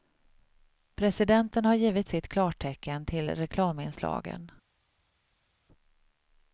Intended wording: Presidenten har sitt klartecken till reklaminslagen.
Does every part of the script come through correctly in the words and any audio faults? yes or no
no